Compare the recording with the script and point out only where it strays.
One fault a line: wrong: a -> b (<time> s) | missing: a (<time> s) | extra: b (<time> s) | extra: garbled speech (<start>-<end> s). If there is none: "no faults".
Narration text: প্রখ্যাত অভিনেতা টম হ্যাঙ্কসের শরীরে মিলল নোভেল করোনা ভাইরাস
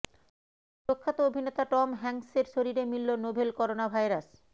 no faults